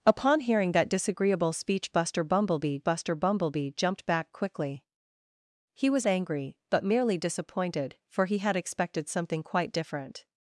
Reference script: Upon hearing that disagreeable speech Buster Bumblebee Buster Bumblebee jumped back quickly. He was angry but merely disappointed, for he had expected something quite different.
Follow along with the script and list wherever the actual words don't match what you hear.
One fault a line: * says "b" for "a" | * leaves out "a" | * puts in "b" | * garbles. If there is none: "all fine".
all fine